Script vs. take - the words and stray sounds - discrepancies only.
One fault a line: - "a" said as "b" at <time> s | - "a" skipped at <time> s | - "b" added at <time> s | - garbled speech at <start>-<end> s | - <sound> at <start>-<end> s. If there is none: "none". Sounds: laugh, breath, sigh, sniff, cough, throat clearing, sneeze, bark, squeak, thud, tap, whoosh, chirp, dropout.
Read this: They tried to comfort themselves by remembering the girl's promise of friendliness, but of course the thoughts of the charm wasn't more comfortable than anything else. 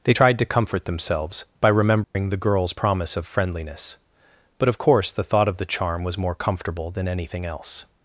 - dropout at 2.0-2.2 s
- "thoughts" said as "thought" at 5.2 s
- "wasn't" said as "was" at 6.0 s